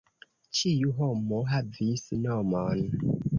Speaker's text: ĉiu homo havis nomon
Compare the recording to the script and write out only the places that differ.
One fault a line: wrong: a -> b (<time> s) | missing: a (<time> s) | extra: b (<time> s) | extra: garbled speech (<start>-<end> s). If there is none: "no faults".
no faults